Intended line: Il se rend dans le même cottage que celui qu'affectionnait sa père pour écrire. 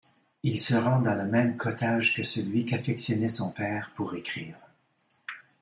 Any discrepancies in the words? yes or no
yes